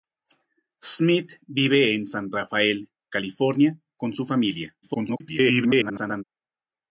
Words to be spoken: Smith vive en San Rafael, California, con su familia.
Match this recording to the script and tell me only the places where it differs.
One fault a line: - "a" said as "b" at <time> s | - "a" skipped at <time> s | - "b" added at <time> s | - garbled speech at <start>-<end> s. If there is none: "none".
- garbled speech at 4.8-6.2 s